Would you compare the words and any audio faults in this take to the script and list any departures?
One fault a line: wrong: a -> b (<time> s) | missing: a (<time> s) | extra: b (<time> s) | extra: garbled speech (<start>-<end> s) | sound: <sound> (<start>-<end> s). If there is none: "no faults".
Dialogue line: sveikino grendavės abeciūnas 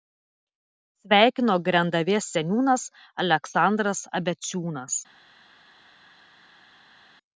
extra: seniūnas aleksandras (2.4 s)